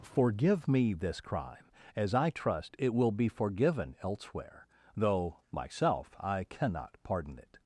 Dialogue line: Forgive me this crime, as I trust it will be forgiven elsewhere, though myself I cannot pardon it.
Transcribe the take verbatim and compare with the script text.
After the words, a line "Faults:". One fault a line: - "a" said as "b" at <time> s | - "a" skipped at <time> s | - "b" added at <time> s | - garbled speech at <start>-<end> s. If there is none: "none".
Forgive me this crime, as I trust it will be forgiven elsewhere, though myself I cannot pardon it.
Faults:
none